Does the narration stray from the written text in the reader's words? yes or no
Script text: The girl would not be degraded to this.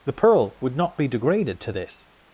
yes